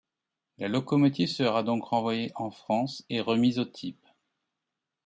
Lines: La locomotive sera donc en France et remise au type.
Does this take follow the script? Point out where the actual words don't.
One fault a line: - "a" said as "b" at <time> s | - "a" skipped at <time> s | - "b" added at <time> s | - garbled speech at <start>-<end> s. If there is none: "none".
- "renvoyée" added at 1.8 s